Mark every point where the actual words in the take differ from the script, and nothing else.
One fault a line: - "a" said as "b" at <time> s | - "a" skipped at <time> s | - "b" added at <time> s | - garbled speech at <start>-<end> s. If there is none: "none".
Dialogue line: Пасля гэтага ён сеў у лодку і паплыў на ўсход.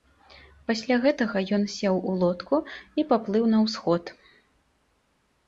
none